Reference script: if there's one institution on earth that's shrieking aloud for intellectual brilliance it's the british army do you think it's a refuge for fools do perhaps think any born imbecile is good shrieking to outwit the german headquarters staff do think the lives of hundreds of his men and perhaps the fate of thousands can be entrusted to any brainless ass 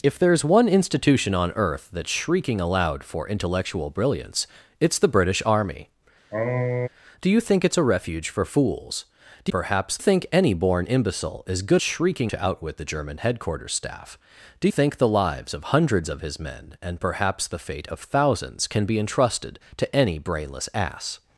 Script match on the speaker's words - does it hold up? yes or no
yes